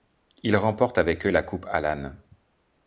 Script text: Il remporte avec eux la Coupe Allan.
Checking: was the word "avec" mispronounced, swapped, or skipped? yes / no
no